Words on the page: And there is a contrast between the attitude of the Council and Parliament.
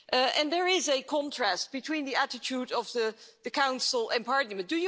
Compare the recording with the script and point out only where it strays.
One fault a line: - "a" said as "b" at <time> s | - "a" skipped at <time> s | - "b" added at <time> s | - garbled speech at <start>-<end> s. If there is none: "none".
none